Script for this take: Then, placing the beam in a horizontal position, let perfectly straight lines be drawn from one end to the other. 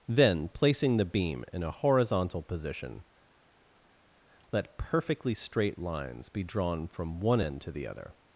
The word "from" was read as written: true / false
true